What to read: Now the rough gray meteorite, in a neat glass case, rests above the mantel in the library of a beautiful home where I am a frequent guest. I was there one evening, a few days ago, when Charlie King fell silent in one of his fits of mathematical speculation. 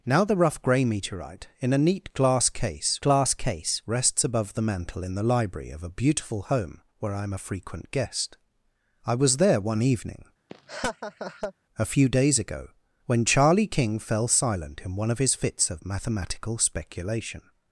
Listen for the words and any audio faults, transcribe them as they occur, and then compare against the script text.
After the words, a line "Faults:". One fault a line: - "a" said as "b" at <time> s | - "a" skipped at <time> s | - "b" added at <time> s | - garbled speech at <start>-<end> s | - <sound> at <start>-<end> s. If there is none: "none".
Now the rough gray meteorite, in a neat glass case glass case, rests above the mantel in the library of a beautiful home where I am a frequent guest. I was there one evening, a few days ago, when Charlie King fell silent in one of his fits of mathematical speculation.
Faults:
- "glass case" added at 3.0 s
- laugh at 10.5-11.5 s